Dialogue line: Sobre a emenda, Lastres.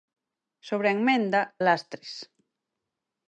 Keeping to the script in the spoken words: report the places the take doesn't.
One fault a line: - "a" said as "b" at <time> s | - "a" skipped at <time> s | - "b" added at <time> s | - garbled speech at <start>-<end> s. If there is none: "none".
none